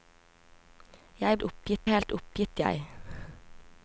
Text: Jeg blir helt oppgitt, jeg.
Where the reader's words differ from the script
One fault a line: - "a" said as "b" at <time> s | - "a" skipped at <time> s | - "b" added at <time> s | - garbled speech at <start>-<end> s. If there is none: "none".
- "blir" said as "oppgitt" at 1.4 s